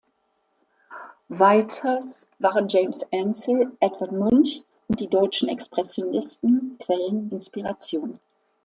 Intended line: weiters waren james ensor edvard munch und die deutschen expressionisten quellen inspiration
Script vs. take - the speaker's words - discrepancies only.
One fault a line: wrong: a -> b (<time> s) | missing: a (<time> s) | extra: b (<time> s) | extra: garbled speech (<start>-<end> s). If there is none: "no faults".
no faults